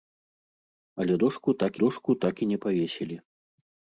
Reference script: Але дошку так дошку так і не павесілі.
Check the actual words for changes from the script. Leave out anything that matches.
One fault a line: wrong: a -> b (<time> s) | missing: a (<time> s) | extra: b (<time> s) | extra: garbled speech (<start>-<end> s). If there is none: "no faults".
no faults